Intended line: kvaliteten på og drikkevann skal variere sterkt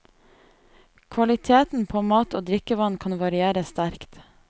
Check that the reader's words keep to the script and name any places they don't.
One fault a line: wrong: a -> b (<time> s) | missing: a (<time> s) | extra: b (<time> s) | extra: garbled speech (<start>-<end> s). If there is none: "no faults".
extra: mat (2.1 s)
wrong: skal -> kan (3.0 s)